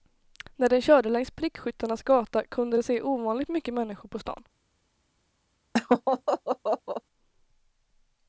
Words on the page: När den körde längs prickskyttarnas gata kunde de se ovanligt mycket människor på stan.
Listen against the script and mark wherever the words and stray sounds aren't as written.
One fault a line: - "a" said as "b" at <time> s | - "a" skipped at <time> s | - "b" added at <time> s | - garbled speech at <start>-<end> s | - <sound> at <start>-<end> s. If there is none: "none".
- laugh at 5.7-7.0 s